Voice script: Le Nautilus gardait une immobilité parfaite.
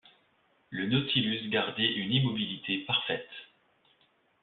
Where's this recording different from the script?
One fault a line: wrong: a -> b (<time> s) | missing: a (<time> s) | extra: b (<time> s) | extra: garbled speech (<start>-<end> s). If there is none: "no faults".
no faults